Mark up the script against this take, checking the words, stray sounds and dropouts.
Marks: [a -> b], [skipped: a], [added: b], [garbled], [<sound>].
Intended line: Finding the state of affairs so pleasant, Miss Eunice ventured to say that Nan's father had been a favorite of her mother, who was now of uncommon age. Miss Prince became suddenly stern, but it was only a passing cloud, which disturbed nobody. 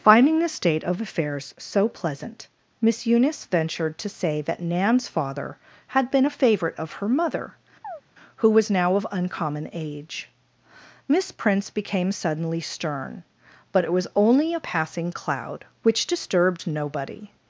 Finding the state of affairs so pleasant, Miss Eunice ventured to say that Nan's father had been a favorite of her mother, [chirp] who was now of uncommon age. Miss Prince became suddenly stern, but it was only a passing cloud, which disturbed nobody.